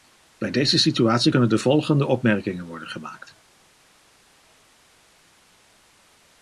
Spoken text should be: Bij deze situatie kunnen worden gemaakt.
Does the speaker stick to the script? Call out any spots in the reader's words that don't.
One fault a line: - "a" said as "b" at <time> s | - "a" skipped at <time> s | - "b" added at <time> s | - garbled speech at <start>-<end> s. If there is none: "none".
- "de volgende opmerkingen" added at 1.5 s